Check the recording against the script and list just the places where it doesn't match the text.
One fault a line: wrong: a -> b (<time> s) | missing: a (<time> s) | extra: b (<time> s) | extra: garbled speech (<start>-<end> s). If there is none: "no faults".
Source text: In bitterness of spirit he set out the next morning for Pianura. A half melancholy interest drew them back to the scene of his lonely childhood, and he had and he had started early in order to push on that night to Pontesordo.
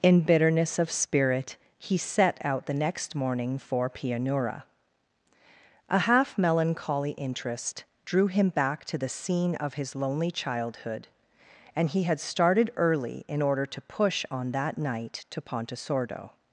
wrong: them -> him (8.3 s)
missing: and he had (12.2 s)